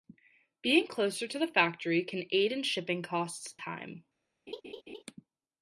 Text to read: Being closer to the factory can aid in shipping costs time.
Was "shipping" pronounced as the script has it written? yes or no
yes